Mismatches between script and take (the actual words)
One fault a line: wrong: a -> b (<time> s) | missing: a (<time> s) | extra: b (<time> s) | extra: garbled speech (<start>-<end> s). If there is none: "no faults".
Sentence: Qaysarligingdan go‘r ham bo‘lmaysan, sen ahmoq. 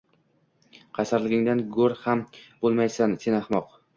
no faults